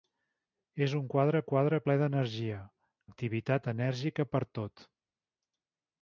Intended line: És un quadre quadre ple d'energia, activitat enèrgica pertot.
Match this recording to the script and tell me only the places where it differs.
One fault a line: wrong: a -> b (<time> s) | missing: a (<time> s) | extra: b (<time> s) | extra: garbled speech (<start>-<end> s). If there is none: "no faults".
no faults